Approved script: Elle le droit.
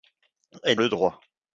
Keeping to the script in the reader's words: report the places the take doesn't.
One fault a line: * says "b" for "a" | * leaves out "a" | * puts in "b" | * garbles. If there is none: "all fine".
all fine